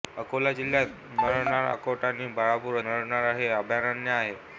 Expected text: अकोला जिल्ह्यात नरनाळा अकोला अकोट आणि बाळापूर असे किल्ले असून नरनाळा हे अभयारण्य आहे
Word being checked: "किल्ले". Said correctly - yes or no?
no